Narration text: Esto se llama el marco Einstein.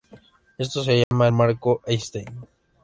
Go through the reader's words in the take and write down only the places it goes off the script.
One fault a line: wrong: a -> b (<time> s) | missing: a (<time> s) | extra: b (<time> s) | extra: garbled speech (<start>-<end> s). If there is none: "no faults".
no faults